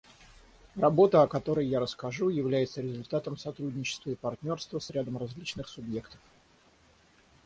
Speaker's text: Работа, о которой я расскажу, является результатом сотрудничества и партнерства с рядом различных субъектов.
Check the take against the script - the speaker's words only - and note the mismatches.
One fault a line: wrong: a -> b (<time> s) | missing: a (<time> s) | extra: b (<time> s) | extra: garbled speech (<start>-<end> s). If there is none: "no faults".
no faults